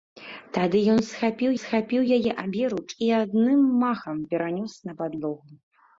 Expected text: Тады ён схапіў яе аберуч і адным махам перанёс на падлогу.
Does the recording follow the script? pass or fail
fail